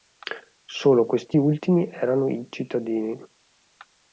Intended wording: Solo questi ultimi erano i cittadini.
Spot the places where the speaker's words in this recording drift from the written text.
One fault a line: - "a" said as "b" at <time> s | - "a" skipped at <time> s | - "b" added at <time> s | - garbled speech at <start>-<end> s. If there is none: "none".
none